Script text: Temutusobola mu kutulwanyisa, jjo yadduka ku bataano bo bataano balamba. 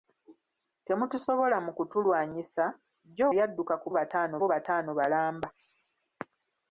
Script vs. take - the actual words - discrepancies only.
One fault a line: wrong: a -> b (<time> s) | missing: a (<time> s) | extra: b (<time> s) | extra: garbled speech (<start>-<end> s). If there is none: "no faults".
no faults